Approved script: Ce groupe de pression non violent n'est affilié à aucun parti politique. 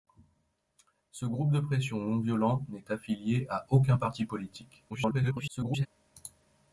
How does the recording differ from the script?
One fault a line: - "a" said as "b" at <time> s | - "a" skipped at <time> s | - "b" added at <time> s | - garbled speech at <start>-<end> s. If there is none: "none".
- garbled speech at 4.9-5.9 s